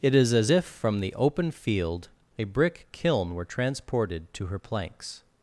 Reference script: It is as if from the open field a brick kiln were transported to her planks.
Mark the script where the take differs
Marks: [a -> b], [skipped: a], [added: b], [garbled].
It is as if from the open field a brick kiln were transported to her planks.